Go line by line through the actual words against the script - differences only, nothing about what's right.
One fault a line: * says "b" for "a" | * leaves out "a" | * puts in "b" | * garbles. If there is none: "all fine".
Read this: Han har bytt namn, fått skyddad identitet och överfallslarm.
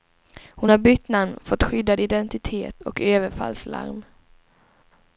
* says "Hon" for "Han"